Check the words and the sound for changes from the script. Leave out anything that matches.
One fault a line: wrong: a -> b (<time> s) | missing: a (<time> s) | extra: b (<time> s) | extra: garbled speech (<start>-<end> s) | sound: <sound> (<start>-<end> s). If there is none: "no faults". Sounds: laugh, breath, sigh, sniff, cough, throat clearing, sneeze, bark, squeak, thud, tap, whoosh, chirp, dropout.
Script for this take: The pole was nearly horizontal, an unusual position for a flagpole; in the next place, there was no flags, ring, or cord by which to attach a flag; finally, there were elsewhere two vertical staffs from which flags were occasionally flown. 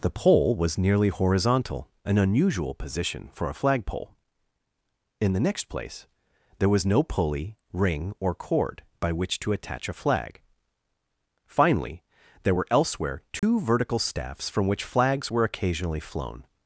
wrong: flags -> pulley (7.0 s)
sound: dropout (13.4-13.4 s)